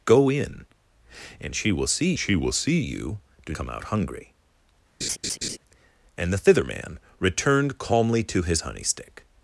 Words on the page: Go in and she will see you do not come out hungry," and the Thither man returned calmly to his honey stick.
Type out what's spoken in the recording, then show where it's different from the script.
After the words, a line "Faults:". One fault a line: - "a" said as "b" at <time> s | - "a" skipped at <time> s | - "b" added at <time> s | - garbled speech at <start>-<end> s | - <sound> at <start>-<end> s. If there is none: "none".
Go in and she will see she will see you do come out hungry," and the Thither man returned calmly to his honey stick.
Faults:
- "she will see" added at 2.2 s
- "not" skipped at 3.6 s
- laugh at 5.0-5.6 s